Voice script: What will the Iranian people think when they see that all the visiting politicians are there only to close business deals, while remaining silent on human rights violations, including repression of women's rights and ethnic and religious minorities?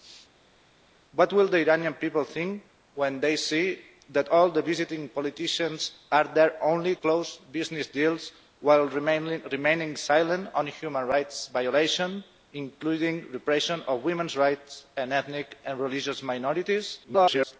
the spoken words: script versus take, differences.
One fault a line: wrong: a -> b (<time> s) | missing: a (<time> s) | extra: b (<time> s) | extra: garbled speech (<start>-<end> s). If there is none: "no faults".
missing: to (7.0 s)
extra: garbled speech (17.0-17.6 s)